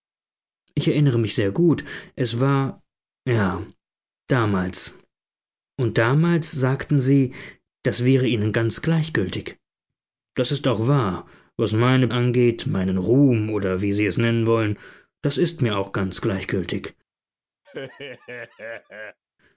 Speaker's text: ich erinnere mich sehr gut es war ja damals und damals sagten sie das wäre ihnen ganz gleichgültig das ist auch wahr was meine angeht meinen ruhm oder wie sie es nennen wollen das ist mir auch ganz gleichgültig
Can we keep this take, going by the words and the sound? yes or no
no